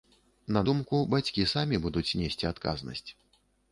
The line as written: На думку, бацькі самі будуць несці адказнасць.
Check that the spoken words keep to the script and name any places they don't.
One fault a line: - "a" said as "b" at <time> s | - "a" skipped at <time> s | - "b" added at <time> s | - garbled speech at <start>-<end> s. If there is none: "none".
none